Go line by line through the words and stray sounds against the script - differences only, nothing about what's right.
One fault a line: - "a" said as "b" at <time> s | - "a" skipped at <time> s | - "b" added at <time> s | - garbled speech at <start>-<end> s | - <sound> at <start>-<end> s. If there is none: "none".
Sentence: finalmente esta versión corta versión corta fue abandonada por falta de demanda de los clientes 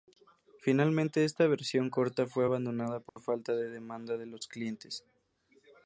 - "versión corta" skipped at 2.2 s
- dropout at 3.1-3.2 s